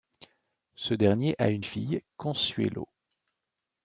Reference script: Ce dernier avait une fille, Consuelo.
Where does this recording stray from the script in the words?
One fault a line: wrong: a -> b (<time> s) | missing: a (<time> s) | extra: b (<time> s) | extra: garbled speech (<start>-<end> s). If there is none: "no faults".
wrong: avait -> a (1.4 s)